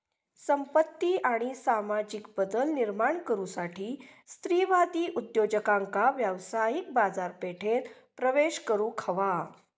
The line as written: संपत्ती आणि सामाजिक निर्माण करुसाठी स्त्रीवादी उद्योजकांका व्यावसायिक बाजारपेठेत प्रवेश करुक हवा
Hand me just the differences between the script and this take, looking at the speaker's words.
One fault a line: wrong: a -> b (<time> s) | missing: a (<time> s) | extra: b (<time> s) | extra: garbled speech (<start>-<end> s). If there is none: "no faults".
extra: बदल (2.4 s)